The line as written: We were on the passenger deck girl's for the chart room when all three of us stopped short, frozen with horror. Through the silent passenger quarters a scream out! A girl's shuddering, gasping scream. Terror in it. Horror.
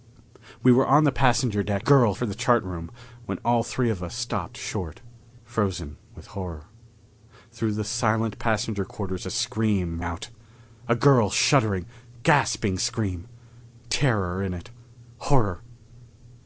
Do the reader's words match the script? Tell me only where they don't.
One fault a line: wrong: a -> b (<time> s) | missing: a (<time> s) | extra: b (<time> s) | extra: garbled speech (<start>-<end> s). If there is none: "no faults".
no faults